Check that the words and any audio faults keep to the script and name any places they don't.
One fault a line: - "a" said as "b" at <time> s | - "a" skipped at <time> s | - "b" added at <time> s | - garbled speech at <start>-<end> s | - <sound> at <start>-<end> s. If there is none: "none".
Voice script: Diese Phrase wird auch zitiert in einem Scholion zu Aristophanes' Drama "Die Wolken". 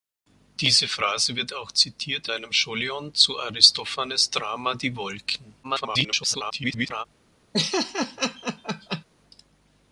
- "in" skipped at 2.3 s
- garbled speech at 5.6-7.0 s
- laugh at 7.5-9.0 s